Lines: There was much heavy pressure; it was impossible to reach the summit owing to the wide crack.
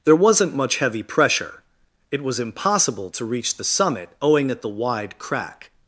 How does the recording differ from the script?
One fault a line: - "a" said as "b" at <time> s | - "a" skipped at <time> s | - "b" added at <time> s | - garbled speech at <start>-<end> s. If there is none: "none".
- "was" said as "wasn't" at 0.1 s
- "to" said as "at" at 4.5 s